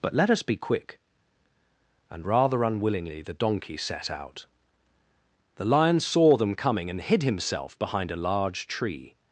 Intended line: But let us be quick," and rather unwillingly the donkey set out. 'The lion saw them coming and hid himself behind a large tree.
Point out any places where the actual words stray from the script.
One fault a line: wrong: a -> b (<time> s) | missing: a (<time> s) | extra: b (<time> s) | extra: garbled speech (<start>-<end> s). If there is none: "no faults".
no faults